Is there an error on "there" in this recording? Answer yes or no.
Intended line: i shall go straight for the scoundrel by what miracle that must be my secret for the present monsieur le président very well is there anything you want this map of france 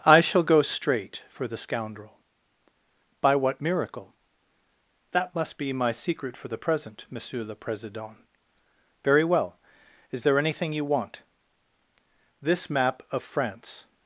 no